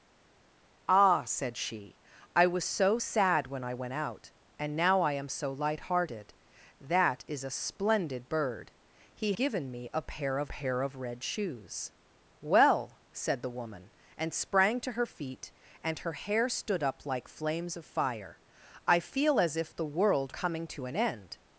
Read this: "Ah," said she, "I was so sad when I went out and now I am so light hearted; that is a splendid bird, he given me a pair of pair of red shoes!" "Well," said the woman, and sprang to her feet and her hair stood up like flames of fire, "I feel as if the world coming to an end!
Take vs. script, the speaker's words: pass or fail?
pass